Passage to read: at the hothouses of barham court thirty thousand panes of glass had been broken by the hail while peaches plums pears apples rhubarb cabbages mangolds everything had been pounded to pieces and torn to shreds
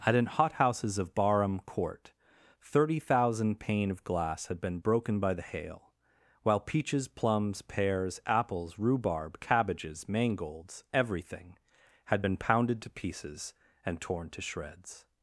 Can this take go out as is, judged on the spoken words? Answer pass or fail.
fail